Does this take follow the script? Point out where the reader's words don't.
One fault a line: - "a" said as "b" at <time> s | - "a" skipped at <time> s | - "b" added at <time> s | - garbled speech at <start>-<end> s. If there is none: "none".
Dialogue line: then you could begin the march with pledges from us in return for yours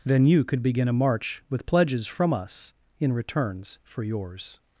- "the" said as "a" at 0.9 s
- "return" said as "returns" at 3.1 s